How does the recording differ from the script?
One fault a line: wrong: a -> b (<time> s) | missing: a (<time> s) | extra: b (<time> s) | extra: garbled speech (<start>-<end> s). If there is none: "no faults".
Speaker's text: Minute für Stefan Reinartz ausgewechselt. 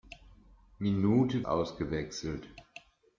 missing: für Stefan Reinartz (1.4 s)